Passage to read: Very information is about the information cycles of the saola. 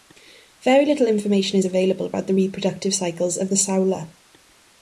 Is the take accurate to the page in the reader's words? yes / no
no